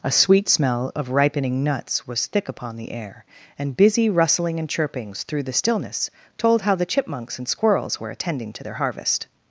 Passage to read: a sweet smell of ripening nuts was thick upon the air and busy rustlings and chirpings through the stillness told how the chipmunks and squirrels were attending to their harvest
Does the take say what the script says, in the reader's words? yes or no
no